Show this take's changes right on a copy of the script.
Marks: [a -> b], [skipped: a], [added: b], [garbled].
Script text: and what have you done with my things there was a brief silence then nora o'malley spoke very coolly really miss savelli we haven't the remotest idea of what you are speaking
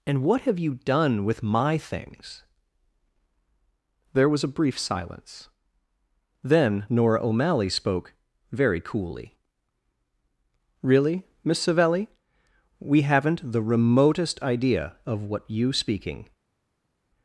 and what have you done with my things there was a brief silence then nora o'malley spoke very coolly really miss savelli we haven't the remotest idea of what you [skipped: are] speaking